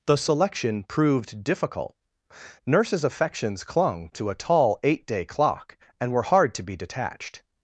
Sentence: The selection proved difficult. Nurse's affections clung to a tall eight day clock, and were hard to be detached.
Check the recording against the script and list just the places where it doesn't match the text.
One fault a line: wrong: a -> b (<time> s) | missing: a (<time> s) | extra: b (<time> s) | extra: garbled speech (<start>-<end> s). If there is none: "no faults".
no faults